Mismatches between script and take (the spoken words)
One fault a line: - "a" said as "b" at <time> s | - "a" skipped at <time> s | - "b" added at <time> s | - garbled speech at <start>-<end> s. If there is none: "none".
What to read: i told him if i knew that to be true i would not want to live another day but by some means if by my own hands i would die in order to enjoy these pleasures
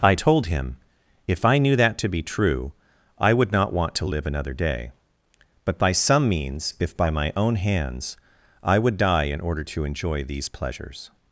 none